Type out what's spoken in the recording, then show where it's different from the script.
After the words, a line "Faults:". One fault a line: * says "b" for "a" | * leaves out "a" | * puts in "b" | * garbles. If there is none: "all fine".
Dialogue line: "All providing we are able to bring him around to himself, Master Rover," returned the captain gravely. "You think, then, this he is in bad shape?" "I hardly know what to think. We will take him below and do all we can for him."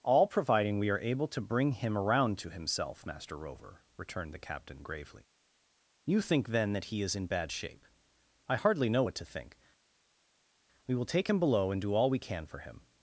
"All providing we are able to bring him around to himself, Master Rover," returned the captain gravely. "You think, then, that he is in bad shape?" "I hardly know what to think. We will take him below and do all we can for him."
Faults:
* says "that" for "this"